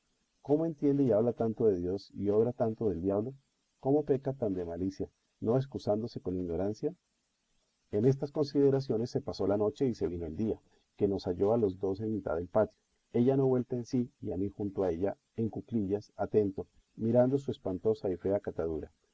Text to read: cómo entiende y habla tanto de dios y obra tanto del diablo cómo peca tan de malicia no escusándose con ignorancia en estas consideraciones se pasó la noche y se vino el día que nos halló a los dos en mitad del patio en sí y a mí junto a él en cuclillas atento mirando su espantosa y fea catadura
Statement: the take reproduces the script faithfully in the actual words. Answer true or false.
false